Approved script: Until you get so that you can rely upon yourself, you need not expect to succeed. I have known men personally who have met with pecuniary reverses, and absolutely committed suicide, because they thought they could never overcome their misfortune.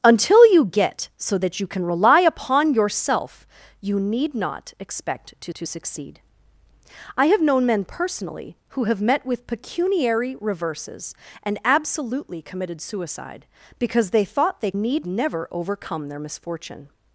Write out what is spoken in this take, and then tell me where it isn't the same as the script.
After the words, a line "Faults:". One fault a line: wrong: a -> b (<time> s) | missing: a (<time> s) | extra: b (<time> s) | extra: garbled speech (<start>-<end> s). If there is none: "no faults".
Until you get so that you can rely upon yourself, you need not expect to to succeed. I have known men personally who have met with pecuniary reverses, and absolutely committed suicide, because they thought they need never overcome their misfortune.
Faults:
extra: to (5.5 s)
wrong: could -> need (14.7 s)